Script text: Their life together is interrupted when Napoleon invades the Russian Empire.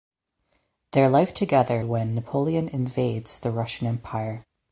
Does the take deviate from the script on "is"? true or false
true